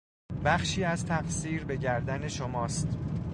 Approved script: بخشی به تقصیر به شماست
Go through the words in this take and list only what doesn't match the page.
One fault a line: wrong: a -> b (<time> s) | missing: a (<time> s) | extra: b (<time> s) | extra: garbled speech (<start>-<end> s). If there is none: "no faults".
wrong: به -> از (0.8 s)
extra: گردن (1.8 s)